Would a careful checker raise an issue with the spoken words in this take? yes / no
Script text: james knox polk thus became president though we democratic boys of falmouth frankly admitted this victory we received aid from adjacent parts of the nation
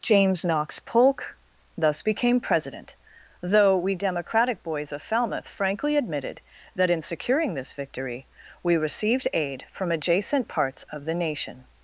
yes